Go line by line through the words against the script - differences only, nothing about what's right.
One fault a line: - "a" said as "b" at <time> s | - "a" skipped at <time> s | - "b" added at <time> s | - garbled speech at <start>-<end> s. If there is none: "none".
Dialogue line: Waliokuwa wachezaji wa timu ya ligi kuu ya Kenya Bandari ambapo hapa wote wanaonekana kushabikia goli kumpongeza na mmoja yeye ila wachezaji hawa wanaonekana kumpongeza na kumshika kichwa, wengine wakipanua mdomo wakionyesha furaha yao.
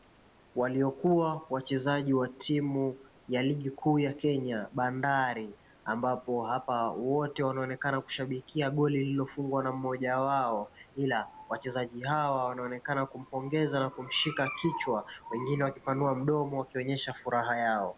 - "kumpongeza" said as "lililofungwa" at 9.0 s
- "yeye" said as "wao" at 10.2 s